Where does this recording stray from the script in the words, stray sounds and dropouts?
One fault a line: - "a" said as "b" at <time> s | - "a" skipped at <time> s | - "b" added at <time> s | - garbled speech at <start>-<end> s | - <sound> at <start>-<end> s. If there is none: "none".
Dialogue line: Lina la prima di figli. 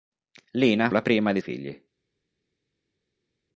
none